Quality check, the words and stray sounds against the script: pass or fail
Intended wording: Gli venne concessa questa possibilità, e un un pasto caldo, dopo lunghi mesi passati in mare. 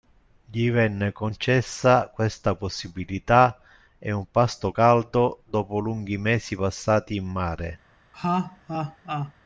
fail